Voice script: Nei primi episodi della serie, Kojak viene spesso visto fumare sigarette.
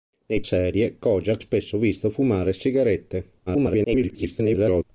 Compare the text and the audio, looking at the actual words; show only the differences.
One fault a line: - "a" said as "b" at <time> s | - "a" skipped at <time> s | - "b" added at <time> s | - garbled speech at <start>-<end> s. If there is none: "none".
- "primi episodi della" skipped at 0.4 s
- "viene" skipped at 1.4 s
- garbled speech at 3.5-4.8 s